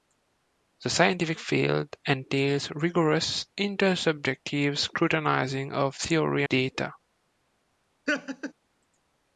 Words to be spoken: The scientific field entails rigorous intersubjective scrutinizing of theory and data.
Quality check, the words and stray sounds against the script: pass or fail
fail